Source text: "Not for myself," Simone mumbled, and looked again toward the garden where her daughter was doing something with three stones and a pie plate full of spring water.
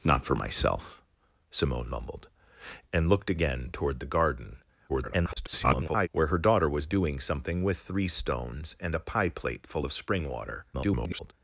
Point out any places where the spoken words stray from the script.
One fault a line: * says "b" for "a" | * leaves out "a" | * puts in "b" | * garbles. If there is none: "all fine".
* garbles
* garbles